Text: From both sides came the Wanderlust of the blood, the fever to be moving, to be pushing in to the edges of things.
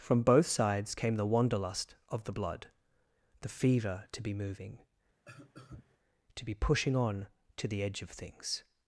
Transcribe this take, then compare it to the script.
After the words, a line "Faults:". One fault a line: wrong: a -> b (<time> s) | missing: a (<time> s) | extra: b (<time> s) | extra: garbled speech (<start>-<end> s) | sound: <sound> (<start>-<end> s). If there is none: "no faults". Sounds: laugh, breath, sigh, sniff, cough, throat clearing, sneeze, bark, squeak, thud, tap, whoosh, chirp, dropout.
From both sides came the Wanderlust of the blood, the fever to be moving, to be pushing on to the edge of things.
Faults:
sound: cough (5.3-6.0 s)
wrong: in -> on (7.0 s)
wrong: edges -> edge (7.8 s)